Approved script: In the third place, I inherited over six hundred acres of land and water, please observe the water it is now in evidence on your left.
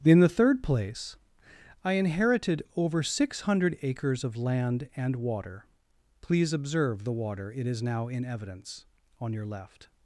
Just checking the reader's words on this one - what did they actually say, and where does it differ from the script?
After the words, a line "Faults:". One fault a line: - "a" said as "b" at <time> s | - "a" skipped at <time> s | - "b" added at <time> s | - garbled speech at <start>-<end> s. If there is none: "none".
In the third place, I inherited over six hundred acres of land and water, please observe the water it is now in evidence on your left.
Faults:
none